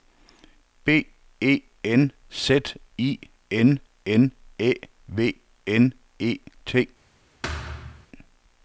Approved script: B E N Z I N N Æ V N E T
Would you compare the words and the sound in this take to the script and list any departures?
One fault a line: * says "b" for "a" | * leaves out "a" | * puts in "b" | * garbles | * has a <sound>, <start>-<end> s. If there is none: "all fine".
* has a thud, 7.4-8.1 s